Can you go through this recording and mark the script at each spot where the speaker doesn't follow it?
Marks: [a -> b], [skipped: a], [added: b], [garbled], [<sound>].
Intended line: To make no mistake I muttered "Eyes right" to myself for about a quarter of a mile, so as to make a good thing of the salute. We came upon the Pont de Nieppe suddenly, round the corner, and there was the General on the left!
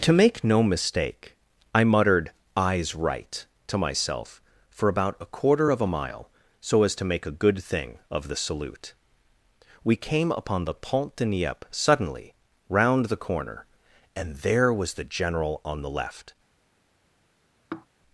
To make no mistake I muttered "Eyes right" to myself for about a quarter of a mile, so as to make a good thing of the salute. We came upon the Pont de Nieppe suddenly, round the corner, and there was the General on the left! [sigh]